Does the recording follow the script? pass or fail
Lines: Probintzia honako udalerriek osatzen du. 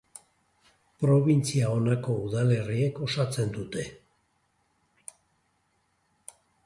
fail